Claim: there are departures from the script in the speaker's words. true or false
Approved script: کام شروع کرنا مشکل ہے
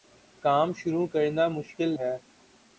false